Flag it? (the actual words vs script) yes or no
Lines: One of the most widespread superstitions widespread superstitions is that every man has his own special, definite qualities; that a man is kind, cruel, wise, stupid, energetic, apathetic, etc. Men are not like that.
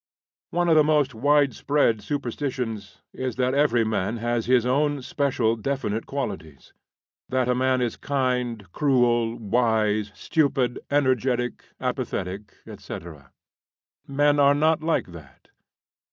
yes